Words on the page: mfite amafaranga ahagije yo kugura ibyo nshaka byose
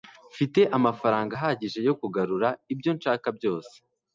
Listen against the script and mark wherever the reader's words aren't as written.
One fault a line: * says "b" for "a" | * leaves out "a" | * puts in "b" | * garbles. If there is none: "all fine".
all fine